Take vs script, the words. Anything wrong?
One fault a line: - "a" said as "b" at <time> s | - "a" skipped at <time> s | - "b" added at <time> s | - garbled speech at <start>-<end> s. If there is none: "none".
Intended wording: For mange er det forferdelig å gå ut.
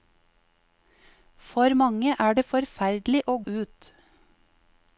- "gå" skipped at 3.4 s